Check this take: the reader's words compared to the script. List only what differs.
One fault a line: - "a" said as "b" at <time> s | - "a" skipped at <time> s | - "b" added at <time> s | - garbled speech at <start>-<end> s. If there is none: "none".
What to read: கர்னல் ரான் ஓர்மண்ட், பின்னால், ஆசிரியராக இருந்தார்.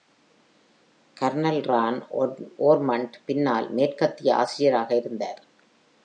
- "மேற்கத்திய" added at 3.7 s